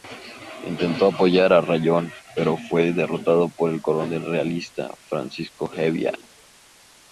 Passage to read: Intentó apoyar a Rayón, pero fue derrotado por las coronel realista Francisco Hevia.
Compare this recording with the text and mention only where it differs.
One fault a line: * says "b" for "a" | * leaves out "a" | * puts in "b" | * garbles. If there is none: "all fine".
* says "el" for "las"